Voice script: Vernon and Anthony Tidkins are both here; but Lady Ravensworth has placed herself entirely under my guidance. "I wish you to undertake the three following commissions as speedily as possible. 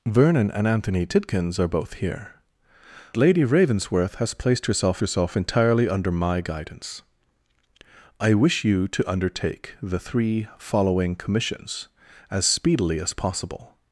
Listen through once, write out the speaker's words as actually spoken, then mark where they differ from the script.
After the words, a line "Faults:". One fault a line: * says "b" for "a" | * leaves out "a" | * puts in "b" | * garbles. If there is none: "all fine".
Vernon and Anthony Tidkins are both here; Lady Ravensworth has placed herself herself entirely under my guidance. "I wish you to undertake the three following commissions as speedily as possible.
Faults:
* leaves out "but"
* puts in "herself"